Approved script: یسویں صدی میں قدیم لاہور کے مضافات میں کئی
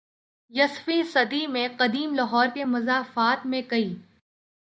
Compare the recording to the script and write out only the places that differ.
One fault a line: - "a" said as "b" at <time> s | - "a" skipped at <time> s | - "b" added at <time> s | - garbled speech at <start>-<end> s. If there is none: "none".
none